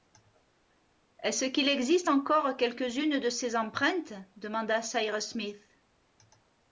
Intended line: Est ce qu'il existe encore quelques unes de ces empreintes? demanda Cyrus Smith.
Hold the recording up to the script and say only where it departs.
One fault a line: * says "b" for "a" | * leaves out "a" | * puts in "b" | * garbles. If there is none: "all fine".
all fine